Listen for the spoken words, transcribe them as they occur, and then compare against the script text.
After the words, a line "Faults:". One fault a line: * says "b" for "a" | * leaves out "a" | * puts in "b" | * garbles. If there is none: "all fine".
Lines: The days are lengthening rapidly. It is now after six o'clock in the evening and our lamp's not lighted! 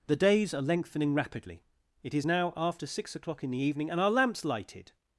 The days are lengthening rapidly. It is now after six o'clock in the evening and our lamp's lighted!
Faults:
* leaves out "not"